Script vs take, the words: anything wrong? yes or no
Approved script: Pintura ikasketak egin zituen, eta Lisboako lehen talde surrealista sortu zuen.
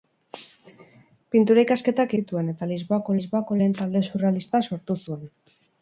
yes